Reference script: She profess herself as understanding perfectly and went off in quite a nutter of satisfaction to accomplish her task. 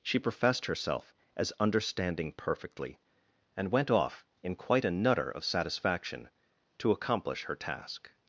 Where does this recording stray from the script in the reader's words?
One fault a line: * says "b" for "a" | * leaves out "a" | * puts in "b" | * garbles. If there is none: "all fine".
* says "professed" for "profess"